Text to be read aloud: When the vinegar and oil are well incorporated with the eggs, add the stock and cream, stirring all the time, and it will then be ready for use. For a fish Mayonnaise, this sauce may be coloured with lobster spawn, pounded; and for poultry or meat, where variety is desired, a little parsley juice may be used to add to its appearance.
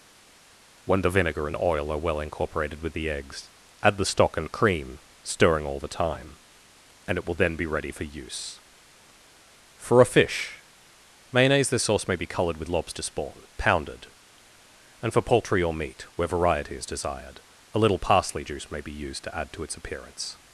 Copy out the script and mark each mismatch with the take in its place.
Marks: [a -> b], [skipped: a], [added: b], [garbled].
When the vinegar and oil are well incorporated with the eggs, add the stock and cream, stirring all the time, and it will then be ready for use. For a fish Mayonnaise, this sauce may be coloured with lobster spawn, pounded; and for poultry or meat, where variety is desired, a little parsley juice may be used to add to its appearance.